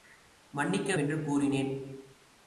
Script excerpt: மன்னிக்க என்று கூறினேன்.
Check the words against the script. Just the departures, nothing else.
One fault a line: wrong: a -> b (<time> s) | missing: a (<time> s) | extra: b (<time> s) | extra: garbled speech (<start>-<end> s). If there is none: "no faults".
no faults